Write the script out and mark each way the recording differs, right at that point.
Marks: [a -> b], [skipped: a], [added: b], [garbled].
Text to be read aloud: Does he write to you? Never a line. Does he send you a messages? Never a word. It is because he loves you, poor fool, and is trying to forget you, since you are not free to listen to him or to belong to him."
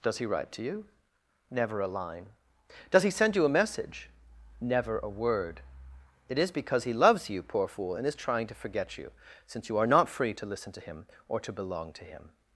Does he write to you? Never a line. Does he send you a [messages? -> message] Never a word. It is because he loves you, poor fool, and is trying to forget you, since you are not free to listen to him or to belong to him."